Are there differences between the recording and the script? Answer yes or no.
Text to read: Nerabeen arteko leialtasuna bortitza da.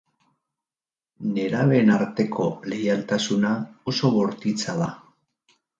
yes